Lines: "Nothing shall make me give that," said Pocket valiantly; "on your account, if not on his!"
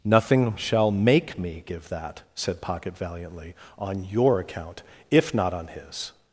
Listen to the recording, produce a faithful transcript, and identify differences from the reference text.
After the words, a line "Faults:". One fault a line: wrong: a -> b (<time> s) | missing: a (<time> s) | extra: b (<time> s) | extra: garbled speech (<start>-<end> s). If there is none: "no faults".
"Nothing shall make me give that," said Pocket valiantly; "on your account, if not on his!"
Faults:
no faults